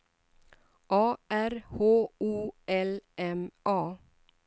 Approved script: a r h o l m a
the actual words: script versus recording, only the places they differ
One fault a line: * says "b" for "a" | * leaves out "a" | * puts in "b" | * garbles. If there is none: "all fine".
all fine